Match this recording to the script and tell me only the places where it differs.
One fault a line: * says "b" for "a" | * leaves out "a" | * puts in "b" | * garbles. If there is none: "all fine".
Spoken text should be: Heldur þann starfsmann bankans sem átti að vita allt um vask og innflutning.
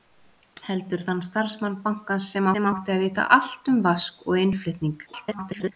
* puts in "sem"
* garbles